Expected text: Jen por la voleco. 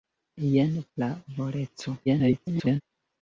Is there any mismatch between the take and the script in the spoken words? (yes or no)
yes